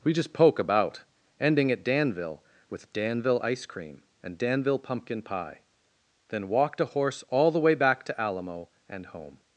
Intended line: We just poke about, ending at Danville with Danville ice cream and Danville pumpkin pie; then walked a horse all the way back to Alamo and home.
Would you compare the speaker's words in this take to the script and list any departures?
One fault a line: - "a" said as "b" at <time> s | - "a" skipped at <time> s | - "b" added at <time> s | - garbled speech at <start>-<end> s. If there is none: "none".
none